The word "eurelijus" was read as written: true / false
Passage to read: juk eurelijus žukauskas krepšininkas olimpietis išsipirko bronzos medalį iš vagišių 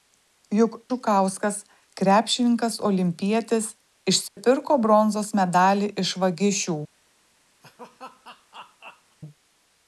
false